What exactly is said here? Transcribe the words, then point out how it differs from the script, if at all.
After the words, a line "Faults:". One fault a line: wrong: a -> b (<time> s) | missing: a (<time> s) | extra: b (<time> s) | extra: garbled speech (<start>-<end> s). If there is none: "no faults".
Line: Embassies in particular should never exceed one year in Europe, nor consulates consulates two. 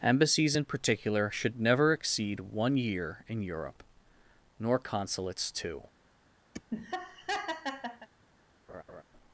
Embassies in particular should never exceed one year in Europe, nor consulates two.
Faults:
missing: consulates (5.5 s)